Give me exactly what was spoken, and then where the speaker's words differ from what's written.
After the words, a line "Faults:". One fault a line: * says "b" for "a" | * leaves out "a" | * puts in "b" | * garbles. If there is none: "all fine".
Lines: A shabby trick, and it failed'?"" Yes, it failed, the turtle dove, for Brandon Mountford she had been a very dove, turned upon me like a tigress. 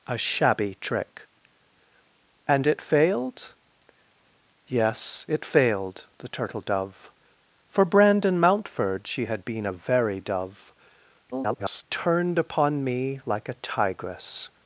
A shabby trick, and it failed'?"" Yes, it failed, the turtle dove, for Brandon Mountford she had been a very dove, [garbled] turned upon me like a tigress.
Faults:
* garbles